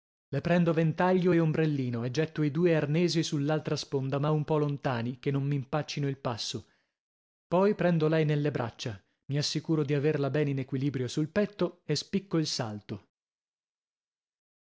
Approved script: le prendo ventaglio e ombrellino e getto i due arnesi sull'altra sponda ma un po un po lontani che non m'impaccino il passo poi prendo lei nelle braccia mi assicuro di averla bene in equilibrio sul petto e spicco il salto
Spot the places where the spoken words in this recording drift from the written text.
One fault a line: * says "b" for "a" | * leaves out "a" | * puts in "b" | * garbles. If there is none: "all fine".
* leaves out "un po"